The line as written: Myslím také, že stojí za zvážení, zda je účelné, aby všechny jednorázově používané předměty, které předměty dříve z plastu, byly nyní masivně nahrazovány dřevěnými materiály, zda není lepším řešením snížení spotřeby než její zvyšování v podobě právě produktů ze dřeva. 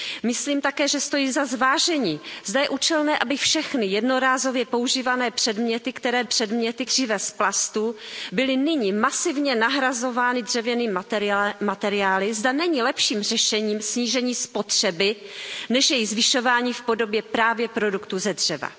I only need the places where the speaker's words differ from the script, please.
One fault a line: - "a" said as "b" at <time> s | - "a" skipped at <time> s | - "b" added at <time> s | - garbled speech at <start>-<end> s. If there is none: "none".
none